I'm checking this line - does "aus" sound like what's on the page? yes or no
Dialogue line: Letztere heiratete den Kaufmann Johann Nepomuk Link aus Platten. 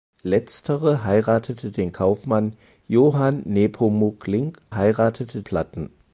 no